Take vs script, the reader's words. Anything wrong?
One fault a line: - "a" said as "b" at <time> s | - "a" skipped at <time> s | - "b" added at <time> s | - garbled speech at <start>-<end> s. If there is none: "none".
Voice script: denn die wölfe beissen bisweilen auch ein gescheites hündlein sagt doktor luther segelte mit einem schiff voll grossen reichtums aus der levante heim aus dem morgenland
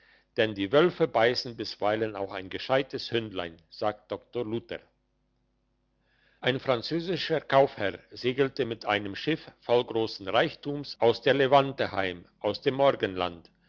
- "ein französischer kaufherr" added at 6.4 s